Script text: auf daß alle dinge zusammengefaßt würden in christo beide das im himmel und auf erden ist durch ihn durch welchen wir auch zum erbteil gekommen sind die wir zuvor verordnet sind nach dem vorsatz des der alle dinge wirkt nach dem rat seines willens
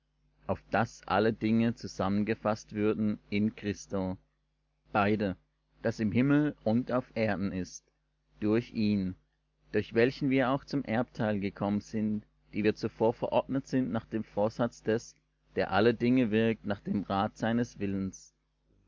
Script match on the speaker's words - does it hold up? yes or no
yes